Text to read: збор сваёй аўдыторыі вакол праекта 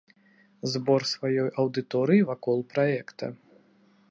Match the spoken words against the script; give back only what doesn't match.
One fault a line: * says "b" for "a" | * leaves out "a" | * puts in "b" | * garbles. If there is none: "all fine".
all fine